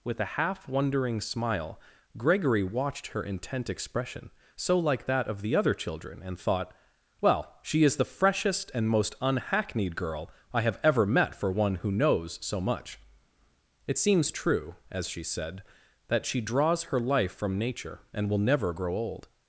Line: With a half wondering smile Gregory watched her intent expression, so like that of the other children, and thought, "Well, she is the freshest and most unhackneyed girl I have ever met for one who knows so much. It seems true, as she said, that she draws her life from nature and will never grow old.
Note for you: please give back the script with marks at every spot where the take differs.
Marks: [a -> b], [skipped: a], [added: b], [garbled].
With a half wondering smile Gregory watched her intent expression, so like that of the other children, and thought, "Well, she is the freshest and most unhackneyed girl I have ever met for one who knows so much. It seems true, as she said, that she draws her life from nature and will never grow old.